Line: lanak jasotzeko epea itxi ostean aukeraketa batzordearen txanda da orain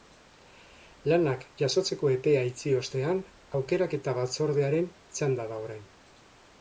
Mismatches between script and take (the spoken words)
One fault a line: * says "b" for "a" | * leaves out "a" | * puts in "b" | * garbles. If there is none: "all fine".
all fine